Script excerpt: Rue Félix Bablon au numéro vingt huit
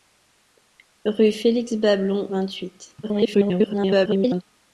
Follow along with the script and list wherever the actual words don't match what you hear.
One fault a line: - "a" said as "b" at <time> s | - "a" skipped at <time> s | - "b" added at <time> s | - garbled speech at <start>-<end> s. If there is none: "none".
- "au numéro" skipped at 2.3 s
- garbled speech at 3.0-4.4 s